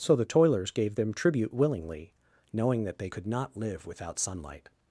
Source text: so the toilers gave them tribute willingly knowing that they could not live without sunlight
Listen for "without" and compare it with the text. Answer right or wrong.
right